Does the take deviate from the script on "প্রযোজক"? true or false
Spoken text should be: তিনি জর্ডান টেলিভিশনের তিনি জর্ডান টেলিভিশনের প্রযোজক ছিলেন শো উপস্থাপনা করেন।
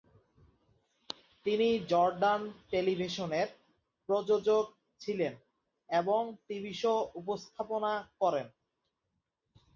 true